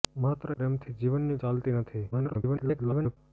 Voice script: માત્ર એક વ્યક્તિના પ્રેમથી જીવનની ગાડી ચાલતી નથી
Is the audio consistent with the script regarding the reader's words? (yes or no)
no